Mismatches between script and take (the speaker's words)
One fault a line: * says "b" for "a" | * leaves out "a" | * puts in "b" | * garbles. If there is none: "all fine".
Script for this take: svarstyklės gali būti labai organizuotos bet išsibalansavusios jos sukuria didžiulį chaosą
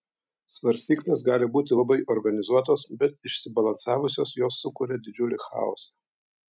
all fine